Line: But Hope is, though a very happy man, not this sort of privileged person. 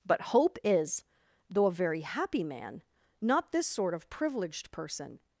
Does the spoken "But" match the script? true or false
true